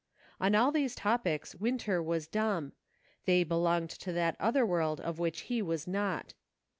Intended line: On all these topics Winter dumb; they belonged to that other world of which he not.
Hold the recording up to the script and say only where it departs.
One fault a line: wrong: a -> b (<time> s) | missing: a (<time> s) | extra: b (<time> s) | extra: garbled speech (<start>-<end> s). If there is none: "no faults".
extra: was (2.0 s)
extra: was (5.6 s)